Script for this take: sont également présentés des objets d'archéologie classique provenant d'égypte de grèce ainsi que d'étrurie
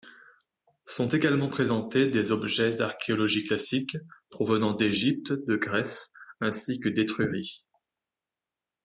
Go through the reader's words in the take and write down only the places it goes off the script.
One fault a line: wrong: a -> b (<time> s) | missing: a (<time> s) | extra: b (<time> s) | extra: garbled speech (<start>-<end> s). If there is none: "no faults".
no faults